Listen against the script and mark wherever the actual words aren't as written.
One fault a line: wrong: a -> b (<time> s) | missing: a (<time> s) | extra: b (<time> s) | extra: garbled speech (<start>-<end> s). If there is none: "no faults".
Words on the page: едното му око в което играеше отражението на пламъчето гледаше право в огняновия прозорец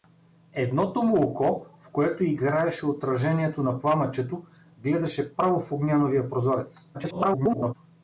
extra: garbled speech (6.9-7.7 s)